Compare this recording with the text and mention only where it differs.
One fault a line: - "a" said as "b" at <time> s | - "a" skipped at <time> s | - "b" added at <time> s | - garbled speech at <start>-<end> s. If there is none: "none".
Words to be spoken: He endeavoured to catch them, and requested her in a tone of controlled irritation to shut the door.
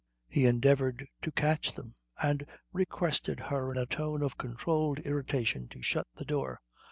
none